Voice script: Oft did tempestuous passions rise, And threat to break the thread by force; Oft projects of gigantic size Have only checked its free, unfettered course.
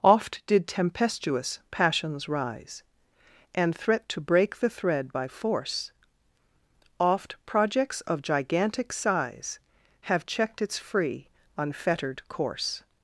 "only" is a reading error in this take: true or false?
true